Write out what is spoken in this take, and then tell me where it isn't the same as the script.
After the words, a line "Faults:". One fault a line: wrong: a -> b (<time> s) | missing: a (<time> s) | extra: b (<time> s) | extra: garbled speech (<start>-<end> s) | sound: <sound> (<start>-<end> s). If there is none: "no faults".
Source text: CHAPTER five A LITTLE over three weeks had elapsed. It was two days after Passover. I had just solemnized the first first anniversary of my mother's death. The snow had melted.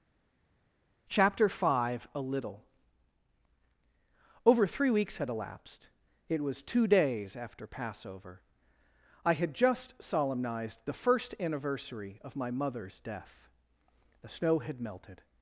CHAPTER five A LITTLE over three weeks had elapsed. It was two days after Passover. I had just solemnized the first anniversary of my mother's death. The snow had melted.
Faults:
missing: first (11.3 s)